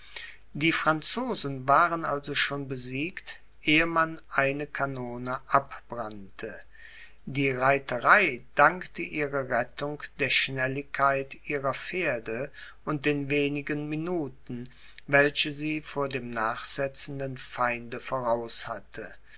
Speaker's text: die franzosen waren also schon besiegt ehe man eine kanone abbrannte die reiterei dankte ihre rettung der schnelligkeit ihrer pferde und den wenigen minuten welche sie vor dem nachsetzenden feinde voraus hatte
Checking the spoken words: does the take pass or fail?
pass